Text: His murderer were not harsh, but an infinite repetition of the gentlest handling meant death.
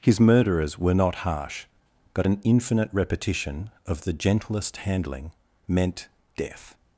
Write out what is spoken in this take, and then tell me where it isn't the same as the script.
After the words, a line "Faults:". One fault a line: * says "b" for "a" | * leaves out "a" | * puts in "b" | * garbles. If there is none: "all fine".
His murderers were not harsh, but an infinite repetition of the gentlest handling meant death.
Faults:
* says "murderers" for "murderer"